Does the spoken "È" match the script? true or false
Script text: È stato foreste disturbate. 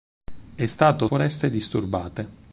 true